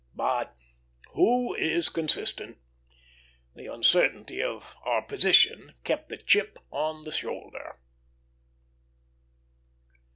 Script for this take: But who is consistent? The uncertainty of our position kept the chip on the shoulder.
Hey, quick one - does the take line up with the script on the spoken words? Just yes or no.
yes